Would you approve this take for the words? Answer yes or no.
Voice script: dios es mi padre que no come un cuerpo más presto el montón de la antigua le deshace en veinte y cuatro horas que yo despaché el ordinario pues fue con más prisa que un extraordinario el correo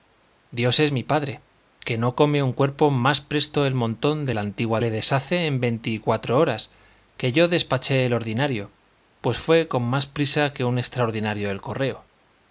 yes